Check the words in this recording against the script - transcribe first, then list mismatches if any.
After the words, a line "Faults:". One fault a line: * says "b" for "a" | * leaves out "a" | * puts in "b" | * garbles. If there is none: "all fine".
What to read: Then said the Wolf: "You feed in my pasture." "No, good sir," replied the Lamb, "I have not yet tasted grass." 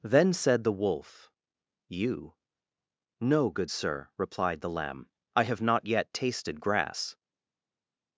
Then said the Wolf: "You." "No, good sir," replied the Lamb, "I have not yet tasted grass."
Faults:
* leaves out "feed in my pasture"